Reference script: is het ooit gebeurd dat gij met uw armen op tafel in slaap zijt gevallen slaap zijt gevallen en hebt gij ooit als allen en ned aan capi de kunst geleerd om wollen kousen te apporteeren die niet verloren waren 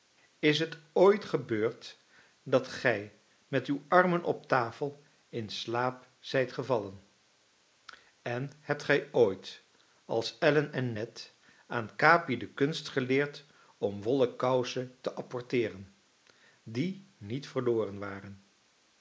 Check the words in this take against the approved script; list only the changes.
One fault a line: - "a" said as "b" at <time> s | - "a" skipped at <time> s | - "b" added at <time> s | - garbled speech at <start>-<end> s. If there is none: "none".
- "slaap zijt gevallen" skipped at 7.0 s